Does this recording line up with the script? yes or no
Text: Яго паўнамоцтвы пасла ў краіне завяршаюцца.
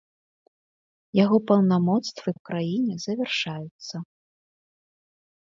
no